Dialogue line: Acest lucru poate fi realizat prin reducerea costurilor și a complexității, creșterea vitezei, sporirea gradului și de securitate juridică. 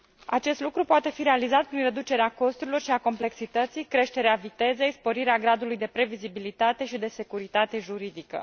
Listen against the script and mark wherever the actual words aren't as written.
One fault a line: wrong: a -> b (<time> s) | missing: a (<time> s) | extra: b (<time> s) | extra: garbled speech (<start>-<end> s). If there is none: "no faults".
extra: de previzibilitate (5.8 s)